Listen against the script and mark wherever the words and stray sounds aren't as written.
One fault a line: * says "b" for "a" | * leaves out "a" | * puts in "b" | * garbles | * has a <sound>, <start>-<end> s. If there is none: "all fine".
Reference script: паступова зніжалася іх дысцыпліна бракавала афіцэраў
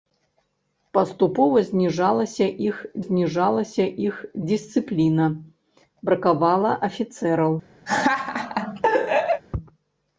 * puts in "зніжалася іх"
* has a laugh, 7.9-9.4 s